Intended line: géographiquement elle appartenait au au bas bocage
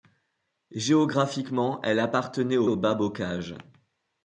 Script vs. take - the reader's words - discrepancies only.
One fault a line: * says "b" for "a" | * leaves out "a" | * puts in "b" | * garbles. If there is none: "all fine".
all fine